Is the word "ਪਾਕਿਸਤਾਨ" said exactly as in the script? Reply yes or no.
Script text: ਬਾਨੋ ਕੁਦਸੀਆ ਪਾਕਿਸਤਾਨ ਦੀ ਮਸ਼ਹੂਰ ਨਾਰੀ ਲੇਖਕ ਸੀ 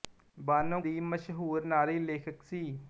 no